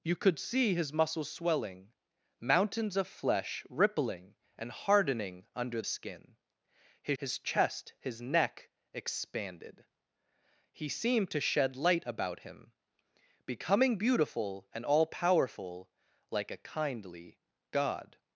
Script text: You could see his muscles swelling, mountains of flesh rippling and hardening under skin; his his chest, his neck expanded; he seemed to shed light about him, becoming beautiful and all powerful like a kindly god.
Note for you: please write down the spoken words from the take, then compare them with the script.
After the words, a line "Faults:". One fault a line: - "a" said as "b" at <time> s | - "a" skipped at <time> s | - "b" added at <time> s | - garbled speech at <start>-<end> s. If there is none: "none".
You could see his muscles swelling, mountains of flesh rippling and hardening under skin; his his chest, his neck expanded; he seemed to shed light about him, becoming beautiful and all powerful like a kindly god.
Faults:
none